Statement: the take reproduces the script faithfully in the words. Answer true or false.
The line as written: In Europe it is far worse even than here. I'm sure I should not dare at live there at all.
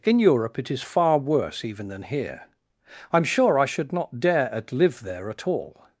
true